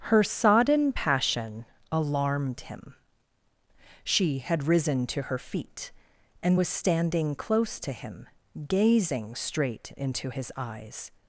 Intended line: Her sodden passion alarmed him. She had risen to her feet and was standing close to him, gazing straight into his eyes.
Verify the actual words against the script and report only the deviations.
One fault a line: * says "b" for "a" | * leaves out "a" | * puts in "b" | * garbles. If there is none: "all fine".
all fine